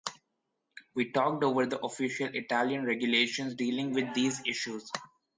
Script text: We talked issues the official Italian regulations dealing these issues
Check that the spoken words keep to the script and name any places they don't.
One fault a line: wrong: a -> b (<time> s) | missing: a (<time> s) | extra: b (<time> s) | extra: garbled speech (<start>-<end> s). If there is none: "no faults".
wrong: issues -> over (1.4 s)
extra: with (3.9 s)